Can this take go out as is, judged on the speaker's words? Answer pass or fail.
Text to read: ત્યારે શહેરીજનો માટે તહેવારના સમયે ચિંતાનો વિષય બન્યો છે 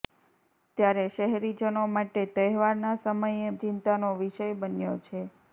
pass